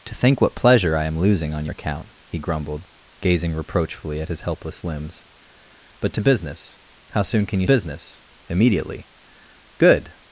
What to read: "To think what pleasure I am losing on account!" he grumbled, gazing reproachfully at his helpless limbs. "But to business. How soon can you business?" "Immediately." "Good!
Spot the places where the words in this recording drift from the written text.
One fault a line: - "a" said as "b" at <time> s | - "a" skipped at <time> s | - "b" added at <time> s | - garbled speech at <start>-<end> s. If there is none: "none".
none